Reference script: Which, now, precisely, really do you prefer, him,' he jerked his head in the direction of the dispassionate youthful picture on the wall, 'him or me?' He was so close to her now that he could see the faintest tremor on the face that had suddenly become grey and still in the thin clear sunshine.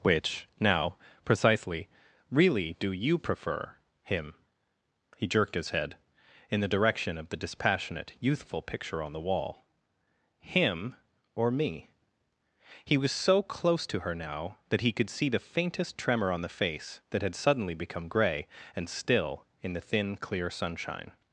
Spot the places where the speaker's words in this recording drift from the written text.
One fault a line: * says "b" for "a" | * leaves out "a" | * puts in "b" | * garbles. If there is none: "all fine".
all fine